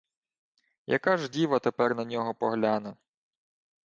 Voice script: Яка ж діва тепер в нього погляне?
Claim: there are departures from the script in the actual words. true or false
true